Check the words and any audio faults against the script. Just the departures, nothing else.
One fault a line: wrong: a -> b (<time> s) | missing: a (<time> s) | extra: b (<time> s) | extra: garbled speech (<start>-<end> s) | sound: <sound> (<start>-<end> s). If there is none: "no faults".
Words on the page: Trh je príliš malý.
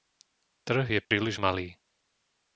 sound: dropout (1.0-1.1 s)